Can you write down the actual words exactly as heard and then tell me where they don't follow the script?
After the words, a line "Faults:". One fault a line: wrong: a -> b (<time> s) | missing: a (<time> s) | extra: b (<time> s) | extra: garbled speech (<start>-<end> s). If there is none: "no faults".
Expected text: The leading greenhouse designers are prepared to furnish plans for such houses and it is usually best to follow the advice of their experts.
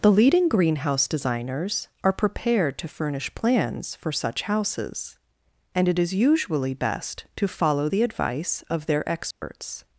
The leading greenhouse designers are prepared to furnish plans for such houses and it is usually best to follow the advice of their experts.
Faults:
no faults